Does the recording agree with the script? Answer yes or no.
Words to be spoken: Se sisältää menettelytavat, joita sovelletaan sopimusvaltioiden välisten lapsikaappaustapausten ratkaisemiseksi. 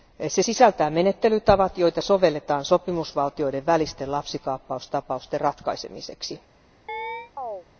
yes